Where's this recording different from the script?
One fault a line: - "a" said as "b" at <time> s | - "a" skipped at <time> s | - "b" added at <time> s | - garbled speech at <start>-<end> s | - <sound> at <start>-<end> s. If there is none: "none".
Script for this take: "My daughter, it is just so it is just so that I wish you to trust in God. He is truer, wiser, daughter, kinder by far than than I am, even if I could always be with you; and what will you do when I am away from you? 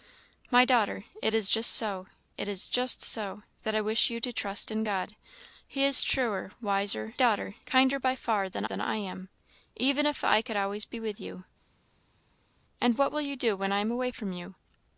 none